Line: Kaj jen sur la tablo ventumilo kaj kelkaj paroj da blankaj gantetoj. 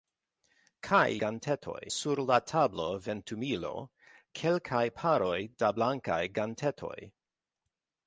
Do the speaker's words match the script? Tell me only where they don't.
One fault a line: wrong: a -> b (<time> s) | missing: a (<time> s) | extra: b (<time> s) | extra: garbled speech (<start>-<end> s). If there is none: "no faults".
wrong: jen -> gantetoj (1.2 s)
missing: kaj (3.7 s)